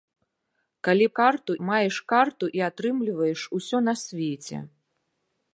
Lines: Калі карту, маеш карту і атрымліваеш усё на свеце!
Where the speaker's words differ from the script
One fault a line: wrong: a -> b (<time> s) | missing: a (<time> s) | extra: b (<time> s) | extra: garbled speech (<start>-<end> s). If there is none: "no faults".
no faults